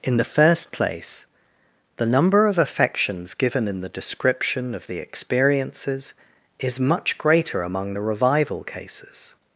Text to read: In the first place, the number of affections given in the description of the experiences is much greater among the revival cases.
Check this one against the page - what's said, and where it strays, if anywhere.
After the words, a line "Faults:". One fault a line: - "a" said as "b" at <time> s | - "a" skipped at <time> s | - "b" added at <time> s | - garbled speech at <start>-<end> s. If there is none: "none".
In the first place, the number of affections given in the description of the experiences is much greater among the revival cases.
Faults:
none